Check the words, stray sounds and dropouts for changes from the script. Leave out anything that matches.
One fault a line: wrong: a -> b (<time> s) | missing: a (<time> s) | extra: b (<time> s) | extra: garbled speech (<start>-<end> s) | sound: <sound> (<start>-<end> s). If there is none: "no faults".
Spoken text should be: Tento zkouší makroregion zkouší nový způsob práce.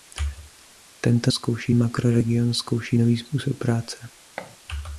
sound: thud (4.4-4.6 s)